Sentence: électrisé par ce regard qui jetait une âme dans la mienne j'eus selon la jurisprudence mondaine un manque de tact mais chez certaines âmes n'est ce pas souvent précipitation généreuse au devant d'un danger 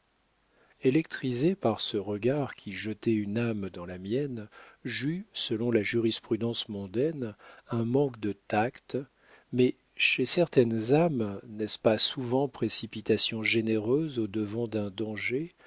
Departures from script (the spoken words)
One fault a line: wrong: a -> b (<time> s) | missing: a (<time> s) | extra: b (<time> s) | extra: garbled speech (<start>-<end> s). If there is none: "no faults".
no faults